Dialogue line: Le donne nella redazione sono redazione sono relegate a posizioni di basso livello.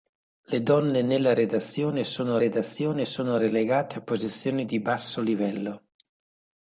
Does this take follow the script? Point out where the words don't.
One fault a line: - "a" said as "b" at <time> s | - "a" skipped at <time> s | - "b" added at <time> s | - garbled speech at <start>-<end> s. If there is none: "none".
none